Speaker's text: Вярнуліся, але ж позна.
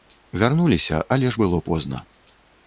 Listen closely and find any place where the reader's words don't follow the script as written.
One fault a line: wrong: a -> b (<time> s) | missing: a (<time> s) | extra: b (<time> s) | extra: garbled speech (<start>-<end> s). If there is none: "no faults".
extra: было (1.4 s)